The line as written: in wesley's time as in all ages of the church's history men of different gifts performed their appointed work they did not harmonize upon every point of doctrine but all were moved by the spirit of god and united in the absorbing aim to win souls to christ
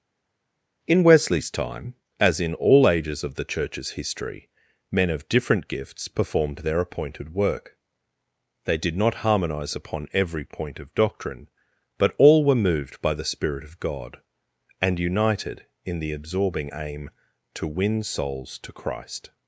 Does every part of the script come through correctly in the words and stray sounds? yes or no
yes